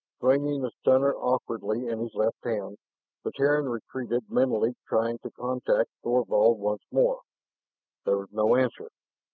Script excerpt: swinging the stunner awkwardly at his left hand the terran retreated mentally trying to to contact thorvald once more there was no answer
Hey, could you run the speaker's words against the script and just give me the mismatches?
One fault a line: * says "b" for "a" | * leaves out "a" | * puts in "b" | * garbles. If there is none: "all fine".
* says "in" for "at"
* leaves out "to"